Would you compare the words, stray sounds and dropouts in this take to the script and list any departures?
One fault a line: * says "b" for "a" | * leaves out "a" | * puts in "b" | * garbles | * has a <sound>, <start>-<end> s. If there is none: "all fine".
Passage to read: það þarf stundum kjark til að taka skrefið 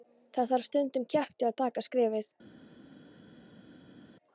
all fine